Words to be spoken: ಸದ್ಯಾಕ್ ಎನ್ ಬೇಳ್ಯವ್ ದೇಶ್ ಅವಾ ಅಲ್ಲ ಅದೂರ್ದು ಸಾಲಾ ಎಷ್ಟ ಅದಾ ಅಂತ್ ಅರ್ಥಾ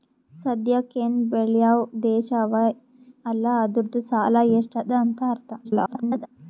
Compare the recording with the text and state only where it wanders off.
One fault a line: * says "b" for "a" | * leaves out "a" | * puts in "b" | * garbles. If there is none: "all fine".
* garbles